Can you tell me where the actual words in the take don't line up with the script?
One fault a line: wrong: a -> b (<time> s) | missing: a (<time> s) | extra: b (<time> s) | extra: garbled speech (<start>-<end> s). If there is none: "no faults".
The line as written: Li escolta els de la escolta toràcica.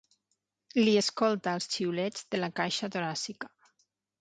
extra: xiulets (1.7 s)
wrong: escolta -> caixa (2.6 s)